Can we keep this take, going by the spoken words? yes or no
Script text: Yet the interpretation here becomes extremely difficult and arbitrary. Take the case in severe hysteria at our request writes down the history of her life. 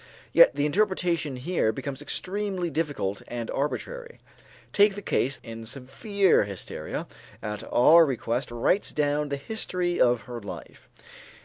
yes